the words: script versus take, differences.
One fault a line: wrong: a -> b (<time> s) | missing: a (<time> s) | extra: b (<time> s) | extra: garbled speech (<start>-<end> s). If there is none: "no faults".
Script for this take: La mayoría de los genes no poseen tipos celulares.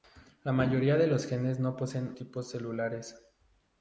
no faults